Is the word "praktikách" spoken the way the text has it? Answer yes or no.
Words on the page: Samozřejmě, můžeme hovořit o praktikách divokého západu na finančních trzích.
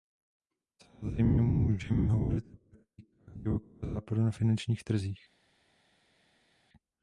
yes